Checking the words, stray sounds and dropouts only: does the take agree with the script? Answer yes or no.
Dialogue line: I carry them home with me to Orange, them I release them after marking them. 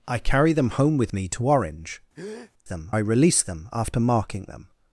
no